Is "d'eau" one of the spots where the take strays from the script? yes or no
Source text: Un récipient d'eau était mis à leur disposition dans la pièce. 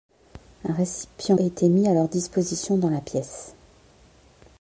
yes